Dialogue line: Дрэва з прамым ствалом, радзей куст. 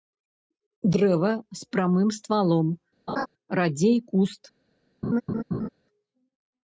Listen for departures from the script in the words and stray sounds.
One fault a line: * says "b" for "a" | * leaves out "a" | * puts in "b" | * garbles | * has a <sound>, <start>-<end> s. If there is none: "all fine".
* has a laugh, 3.1-3.3 s
* has a laugh, 5.0-5.7 s